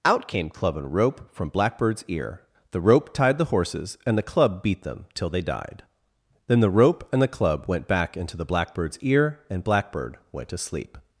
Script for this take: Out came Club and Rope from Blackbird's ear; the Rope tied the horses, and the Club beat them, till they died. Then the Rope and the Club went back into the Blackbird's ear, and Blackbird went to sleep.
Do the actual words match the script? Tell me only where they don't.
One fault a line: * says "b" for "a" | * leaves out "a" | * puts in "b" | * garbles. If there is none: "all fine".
all fine